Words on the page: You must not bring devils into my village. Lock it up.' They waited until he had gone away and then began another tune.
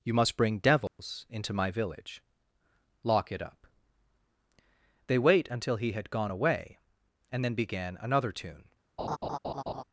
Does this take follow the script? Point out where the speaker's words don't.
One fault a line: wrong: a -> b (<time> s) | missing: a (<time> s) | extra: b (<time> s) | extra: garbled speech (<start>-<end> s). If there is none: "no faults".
missing: not (0.4 s)
wrong: waited -> wait (5.2 s)